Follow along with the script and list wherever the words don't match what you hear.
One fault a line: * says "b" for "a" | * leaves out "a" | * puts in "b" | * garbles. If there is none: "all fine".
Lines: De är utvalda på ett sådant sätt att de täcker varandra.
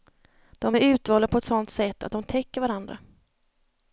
all fine